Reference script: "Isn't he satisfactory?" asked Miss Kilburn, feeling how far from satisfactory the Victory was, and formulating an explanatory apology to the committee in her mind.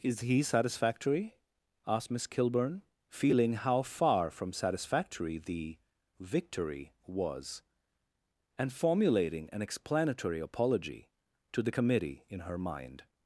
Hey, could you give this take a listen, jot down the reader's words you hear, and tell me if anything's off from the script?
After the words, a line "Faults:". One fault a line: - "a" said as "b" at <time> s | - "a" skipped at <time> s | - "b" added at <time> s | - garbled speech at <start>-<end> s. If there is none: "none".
"Is he satisfactory?" asked Miss Kilburn, feeling how far from satisfactory the Victory was, and formulating an explanatory apology to the committee in her mind.
Faults:
- "Isn't" said as "Is" at 0.0 s